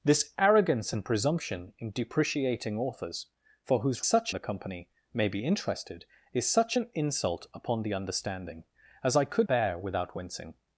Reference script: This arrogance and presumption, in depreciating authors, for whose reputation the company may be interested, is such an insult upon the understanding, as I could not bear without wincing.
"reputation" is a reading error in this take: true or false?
true